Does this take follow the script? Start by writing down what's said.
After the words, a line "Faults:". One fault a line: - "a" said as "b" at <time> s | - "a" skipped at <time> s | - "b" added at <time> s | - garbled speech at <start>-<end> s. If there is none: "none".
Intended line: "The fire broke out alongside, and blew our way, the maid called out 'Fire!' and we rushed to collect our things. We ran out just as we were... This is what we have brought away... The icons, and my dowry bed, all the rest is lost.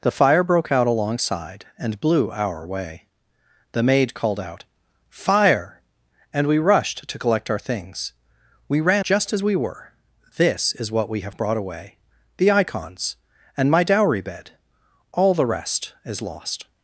"The fire broke out alongside, and blew our way, the maid called out 'Fire!' and we rushed to collect our things. We ran just as we were... This is what we have brought away... The icons, and my dowry bed, all the rest is lost.
Faults:
- "out" skipped at 9.1 s